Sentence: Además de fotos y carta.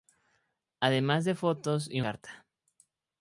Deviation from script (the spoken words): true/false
false